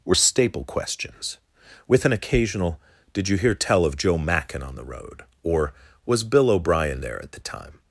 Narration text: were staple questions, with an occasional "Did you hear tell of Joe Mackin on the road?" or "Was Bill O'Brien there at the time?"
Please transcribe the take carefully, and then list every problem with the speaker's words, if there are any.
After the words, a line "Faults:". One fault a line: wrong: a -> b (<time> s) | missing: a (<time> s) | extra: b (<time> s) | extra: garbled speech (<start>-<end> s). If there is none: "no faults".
were staple questions, with an occasional "Did you hear tell of Joe Mackin on the road?" or "Was Bill O'Brien there at the time?"
Faults:
no faults